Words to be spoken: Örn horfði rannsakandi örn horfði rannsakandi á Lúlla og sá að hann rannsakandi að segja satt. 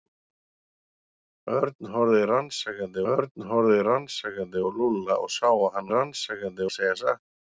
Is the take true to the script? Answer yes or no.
yes